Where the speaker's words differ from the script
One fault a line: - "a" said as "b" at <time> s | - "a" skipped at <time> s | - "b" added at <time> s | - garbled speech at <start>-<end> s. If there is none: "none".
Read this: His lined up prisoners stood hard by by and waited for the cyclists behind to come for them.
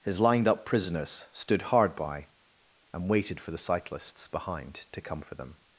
- "by" skipped at 2.3 s